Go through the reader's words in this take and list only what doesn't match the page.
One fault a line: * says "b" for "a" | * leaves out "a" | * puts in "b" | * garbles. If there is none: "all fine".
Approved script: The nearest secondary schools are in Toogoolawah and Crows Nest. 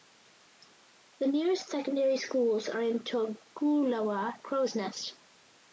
* leaves out "and"